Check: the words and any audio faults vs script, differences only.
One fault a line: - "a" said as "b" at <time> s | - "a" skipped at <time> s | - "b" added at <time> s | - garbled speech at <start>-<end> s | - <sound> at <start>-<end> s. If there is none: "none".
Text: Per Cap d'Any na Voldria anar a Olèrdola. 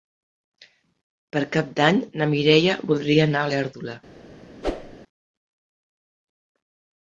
- "Mireia" added at 2.3 s
- whoosh at 4.6-5.0 s